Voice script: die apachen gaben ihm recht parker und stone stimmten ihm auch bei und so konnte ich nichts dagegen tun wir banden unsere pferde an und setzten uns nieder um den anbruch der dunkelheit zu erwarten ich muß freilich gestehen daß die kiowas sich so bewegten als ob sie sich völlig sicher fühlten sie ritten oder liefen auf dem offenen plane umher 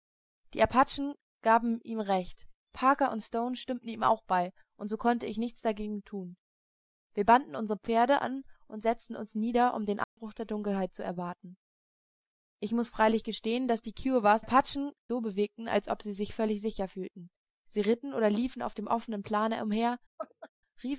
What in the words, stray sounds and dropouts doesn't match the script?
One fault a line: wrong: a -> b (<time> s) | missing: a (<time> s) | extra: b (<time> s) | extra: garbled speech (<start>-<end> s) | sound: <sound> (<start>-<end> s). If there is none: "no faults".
sound: dropout (10.0-10.2 s)
wrong: sich -> apachen (14.4 s)
sound: laugh (20.2-20.5 s)